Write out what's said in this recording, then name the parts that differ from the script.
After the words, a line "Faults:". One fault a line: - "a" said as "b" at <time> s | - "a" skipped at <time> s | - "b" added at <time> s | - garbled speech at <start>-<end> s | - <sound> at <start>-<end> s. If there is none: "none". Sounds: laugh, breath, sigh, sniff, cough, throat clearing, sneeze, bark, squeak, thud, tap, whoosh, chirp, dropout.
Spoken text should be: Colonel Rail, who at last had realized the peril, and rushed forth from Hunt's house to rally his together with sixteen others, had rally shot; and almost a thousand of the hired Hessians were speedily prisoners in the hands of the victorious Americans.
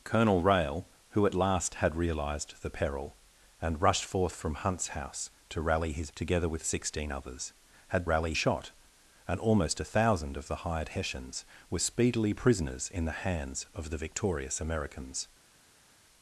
Colonel Rail, who at last had realized the peril, and rushed forth from Hunt's house to rally his together with sixteen others, had rally shot; and almost a thousand of the hired Hessians were speedily prisoners in the hands of the victorious Americans.
Faults:
none